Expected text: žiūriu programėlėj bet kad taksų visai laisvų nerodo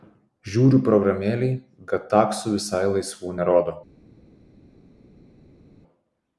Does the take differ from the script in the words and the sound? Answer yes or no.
yes